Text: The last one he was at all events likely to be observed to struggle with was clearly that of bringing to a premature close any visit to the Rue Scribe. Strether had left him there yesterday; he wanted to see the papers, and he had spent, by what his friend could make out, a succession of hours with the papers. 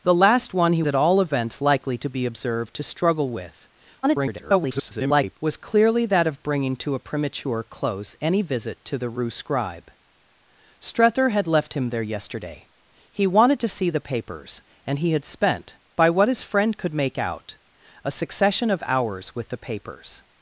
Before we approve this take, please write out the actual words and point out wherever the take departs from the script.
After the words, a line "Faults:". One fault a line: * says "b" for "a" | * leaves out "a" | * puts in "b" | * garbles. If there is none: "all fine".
The last one he at all events likely to be observed to struggle with [garbled] was clearly that of bringing to a premature close any visit to the Rue Scribe. Strether had left him there yesterday; he wanted to see the papers, and he had spent, by what his friend could make out, a succession of hours with the papers.
Faults:
* leaves out "was"
* garbles